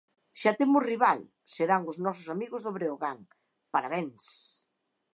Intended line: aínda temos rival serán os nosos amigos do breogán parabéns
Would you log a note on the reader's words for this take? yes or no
yes